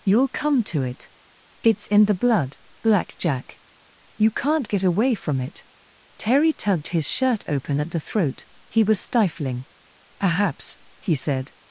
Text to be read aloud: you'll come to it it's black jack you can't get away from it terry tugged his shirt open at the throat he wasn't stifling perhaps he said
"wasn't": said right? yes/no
no